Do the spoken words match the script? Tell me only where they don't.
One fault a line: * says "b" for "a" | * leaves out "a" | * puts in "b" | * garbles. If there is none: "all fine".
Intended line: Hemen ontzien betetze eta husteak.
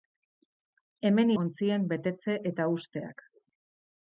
all fine